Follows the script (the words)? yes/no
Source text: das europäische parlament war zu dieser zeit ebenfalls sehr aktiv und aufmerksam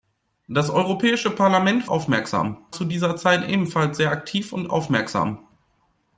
no